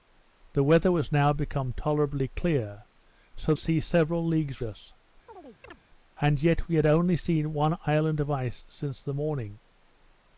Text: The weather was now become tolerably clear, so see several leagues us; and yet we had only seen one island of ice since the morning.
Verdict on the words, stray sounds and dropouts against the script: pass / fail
fail